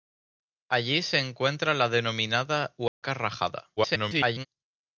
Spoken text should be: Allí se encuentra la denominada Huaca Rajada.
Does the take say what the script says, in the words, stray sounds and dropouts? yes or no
no